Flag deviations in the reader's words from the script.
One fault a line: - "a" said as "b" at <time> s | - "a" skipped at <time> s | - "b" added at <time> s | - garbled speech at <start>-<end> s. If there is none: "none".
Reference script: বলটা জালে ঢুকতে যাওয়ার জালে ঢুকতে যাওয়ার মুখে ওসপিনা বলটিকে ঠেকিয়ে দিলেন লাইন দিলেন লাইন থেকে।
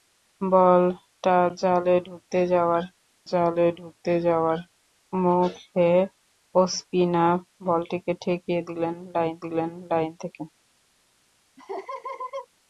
none